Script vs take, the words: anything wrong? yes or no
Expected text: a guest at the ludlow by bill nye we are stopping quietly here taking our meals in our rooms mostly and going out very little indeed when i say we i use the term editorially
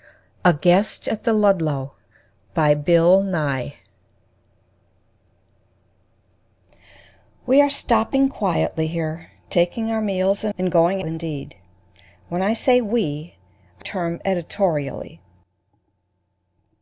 yes